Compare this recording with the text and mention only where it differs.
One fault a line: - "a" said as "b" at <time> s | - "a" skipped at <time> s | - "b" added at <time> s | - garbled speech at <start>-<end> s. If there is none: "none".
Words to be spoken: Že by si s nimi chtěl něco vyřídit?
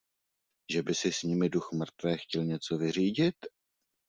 - "duch mrtvé" added at 1.5 s